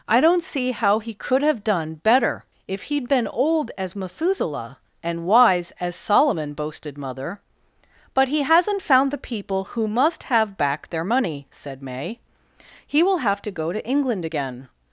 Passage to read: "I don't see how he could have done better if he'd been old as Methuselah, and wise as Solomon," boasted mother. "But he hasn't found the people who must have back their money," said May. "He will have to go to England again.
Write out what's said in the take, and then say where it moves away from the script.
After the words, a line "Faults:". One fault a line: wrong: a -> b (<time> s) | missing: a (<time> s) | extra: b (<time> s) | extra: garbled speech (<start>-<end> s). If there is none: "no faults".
"I don't see how he could have done better if he'd been old as Methuselah, and wise as Solomon," boasted mother. "But he hasn't found the people who must have back their money," said May. "He will have to go to England again.
Faults:
no faults